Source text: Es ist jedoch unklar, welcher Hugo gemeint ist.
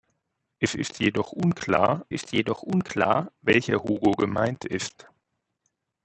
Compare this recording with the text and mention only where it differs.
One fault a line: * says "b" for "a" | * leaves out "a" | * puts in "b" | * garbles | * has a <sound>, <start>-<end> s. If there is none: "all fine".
* puts in "ist jedoch unklar"